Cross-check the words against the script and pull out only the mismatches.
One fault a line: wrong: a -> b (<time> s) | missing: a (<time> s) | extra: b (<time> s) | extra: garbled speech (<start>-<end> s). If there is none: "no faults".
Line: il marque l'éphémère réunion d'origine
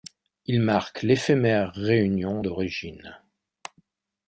no faults